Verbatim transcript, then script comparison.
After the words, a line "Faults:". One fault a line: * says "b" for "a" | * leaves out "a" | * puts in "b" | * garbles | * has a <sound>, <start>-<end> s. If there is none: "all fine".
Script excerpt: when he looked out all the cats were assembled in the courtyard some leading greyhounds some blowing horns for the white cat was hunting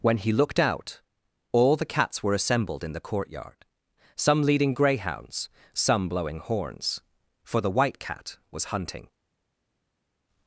when he looked out all the cats were assembled in the courtyard some leading greyhounds some blowing horns for the white cat was hunting
Faults:
all fine